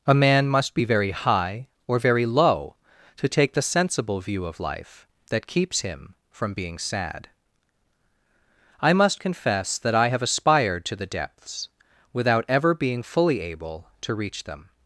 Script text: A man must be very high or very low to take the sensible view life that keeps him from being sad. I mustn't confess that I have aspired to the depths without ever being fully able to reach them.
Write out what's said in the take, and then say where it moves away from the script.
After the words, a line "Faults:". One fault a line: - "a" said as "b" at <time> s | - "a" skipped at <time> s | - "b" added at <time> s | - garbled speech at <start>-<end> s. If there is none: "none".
A man must be very high or very low to take the sensible view of life that keeps him from being sad. I must confess that I have aspired to the depths without ever being fully able to reach them.
Faults:
- "of" added at 4.5 s
- "mustn't" said as "must" at 8.9 s